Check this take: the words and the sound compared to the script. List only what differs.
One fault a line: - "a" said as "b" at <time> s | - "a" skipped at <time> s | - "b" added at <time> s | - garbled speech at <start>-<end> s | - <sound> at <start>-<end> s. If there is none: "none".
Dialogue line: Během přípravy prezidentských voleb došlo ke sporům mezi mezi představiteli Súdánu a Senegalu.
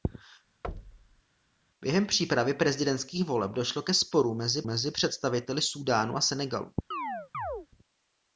- thud at 0.6-1.2 s
- chirp at 6.9-7.7 s